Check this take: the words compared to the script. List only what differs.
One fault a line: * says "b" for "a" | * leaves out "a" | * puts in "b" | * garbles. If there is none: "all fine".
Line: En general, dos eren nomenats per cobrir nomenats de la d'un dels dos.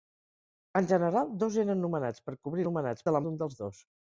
all fine